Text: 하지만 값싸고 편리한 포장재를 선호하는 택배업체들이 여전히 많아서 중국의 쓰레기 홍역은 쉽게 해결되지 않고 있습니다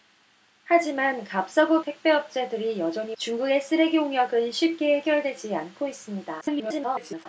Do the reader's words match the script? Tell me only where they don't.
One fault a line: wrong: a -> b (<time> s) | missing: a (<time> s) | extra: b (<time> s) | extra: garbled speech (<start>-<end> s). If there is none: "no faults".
missing: 편리한 포장재를 선호하는 (1.8 s)
missing: 많아서 (3.2 s)
extra: garbled speech (6.4-7.3 s)